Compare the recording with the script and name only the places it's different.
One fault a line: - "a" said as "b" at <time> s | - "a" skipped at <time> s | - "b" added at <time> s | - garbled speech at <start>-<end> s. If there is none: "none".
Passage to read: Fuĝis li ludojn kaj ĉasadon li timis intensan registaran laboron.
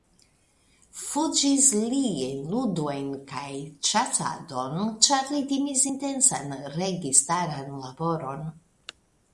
- "en" added at 2.3 s
- "ĉar" added at 5.1 s